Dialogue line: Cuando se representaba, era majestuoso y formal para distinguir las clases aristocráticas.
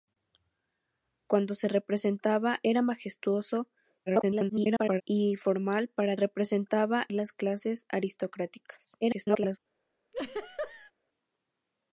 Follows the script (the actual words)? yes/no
no